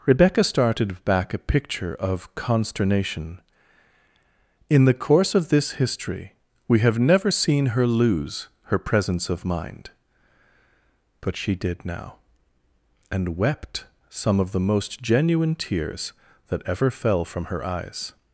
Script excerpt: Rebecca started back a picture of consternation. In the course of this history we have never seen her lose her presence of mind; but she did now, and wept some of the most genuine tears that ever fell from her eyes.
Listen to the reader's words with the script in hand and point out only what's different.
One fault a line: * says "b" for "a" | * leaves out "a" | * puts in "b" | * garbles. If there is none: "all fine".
all fine